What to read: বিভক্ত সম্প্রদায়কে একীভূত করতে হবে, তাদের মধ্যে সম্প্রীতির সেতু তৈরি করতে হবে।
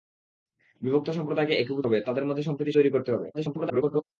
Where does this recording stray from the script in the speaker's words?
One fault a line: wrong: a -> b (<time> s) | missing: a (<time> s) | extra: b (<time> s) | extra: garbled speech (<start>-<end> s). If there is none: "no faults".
missing: করতে (1.9 s)
missing: সেতু (2.8 s)
extra: garbled speech (3.3-4.0 s)